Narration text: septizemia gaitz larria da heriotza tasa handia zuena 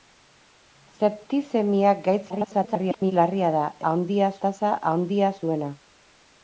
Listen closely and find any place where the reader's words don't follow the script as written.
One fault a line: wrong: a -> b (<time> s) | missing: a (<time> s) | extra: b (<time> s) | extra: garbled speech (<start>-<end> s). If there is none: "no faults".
extra: garbled speech (2.3-3.1 s)
wrong: heriotza -> handia (3.9 s)